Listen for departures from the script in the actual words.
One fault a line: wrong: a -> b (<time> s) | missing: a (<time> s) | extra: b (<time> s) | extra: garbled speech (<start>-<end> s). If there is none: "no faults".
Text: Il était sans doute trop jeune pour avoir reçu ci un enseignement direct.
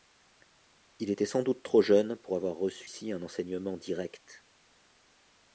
no faults